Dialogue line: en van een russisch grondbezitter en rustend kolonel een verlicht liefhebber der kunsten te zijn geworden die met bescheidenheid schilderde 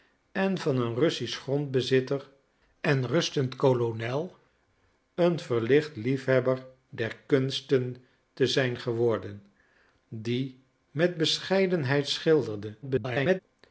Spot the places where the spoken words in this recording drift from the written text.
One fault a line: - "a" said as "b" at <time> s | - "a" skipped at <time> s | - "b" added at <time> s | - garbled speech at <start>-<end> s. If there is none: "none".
- garbled speech at 12.8-13.4 s